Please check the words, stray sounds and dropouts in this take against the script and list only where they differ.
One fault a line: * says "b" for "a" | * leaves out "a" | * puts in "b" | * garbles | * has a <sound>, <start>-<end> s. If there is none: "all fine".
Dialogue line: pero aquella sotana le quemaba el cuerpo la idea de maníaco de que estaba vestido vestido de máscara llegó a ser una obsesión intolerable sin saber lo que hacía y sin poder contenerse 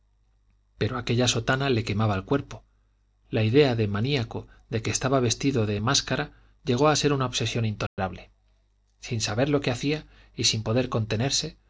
* leaves out "vestido"
* has a dropout, 7.9-8.0 s